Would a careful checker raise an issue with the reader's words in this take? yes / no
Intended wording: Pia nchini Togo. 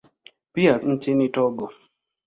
no